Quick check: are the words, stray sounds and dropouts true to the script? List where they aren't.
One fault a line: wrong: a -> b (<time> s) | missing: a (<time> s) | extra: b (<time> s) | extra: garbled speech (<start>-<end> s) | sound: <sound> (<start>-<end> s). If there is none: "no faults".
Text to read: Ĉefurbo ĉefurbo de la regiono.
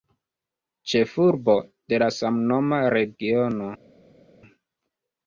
missing: ĉefurbo (1.5 s)
extra: samnoma (2.1 s)